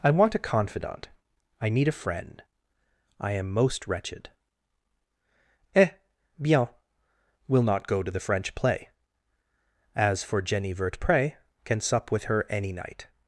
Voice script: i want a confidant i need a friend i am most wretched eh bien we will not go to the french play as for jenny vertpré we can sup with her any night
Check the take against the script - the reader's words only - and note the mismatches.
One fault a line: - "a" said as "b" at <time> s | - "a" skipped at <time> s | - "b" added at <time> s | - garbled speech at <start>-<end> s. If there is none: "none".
- "we" skipped at 6.7 s
- "we" skipped at 11.3 s